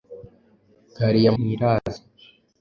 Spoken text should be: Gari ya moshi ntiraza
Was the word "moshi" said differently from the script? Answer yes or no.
yes